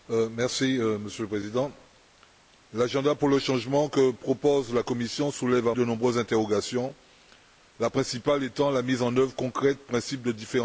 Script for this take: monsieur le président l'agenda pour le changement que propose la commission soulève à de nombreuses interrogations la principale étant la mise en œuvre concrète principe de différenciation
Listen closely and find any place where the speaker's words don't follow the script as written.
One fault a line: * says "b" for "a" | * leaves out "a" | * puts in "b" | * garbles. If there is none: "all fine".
all fine